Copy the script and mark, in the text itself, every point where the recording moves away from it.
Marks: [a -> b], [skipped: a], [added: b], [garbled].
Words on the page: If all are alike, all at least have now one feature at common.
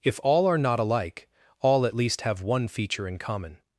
If all are [added: not] alike, all at least have [skipped: now] one feature [at -> in] common.